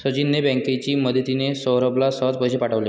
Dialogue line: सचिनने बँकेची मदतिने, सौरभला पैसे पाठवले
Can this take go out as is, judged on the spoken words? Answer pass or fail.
fail